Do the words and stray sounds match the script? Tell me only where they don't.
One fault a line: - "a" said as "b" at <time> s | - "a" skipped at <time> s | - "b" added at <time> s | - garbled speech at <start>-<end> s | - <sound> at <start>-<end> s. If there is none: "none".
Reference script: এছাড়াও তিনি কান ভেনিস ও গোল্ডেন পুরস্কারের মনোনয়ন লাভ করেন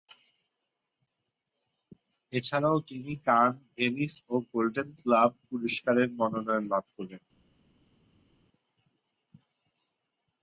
- "গ্লোব" added at 5.0 s